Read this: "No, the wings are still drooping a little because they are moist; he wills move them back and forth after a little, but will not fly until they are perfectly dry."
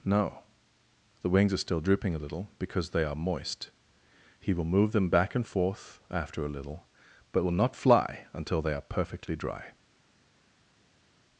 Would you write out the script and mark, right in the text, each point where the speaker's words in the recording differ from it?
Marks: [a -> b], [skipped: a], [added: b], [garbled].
"No, the wings are still drooping a little because they are moist; he [wills -> will] move them back and forth after a little, but will not fly until they are perfectly dry."